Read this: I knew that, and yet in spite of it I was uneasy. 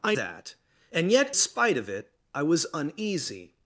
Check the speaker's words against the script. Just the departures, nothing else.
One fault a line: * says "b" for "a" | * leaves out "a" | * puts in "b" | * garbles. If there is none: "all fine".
* leaves out "knew"
* leaves out "in"